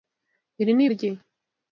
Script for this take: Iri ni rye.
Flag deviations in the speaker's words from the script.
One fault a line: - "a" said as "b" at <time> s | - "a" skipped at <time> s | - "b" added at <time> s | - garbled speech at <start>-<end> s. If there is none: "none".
none